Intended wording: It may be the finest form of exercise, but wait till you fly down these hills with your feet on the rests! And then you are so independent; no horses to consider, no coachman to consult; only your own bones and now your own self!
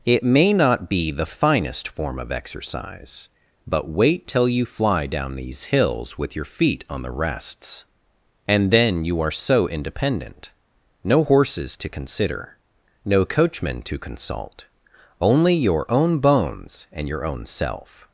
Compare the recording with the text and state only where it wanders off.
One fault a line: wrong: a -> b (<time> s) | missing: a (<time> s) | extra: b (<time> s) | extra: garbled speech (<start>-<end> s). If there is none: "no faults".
extra: not (0.5 s)
missing: now (17.1 s)